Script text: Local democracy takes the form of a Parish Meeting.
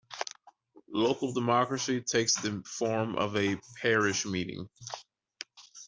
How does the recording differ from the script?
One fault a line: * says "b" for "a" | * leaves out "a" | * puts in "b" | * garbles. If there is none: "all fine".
all fine